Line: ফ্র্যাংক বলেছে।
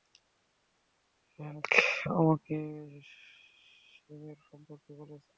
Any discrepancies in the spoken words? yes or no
yes